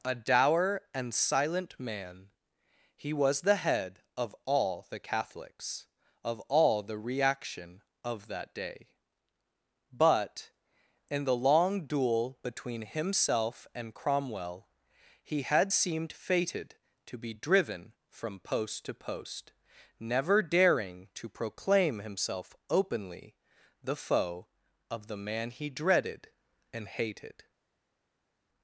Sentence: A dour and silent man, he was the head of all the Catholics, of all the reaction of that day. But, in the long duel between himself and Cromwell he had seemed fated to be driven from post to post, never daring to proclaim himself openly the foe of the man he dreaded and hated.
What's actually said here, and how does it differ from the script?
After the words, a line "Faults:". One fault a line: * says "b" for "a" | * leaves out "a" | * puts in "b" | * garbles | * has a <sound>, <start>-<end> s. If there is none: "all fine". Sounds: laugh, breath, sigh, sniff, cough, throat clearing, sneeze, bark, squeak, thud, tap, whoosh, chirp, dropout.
A dour and silent man, he was the head of all the Catholics, of all the reaction of that day. But, in the long duel between himself and Cromwell he had seemed fated to be driven from post to post, never daring to proclaim himself openly the foe of the man he dreaded and hated.
Faults:
all fine